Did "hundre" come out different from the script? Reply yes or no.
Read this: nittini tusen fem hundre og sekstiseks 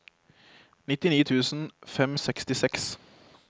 yes